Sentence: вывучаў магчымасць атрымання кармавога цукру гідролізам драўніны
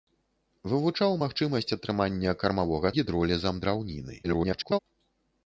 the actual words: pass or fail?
fail